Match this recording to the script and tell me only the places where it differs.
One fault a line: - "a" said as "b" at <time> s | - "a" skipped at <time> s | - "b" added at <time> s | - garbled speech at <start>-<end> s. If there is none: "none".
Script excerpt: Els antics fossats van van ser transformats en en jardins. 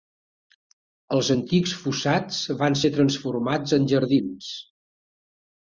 - "van" skipped at 2.8 s
- "en" skipped at 3.9 s